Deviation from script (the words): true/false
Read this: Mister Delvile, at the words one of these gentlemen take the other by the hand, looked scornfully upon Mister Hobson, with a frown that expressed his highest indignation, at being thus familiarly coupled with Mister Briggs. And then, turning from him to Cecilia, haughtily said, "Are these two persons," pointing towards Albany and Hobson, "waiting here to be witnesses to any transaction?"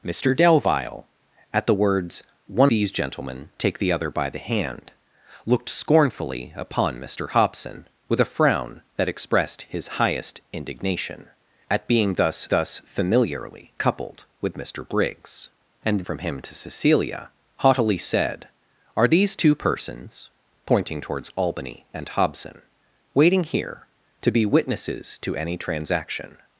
true